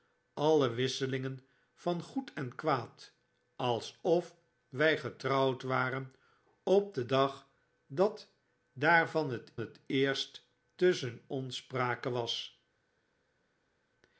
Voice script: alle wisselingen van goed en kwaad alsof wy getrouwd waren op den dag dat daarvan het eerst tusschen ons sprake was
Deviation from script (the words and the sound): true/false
true